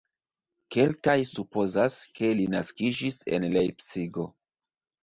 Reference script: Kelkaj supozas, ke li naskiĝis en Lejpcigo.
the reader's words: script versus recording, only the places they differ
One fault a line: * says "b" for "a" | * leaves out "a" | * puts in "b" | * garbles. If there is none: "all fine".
all fine